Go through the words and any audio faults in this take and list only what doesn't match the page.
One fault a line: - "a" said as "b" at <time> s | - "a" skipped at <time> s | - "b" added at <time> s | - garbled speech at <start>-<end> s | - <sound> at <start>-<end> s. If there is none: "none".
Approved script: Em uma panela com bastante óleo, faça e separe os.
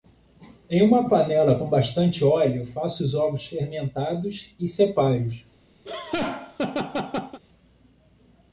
- "os ovos fermentados" added at 3.0 s
- laugh at 5.8-7.4 s